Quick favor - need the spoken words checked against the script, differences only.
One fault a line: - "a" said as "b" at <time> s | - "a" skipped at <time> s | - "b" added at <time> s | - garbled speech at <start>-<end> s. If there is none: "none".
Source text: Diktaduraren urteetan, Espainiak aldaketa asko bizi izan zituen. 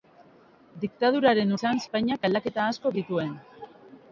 - "urteetan" said as "izan" at 1.6 s
- "bizi izan" skipped at 3.0 s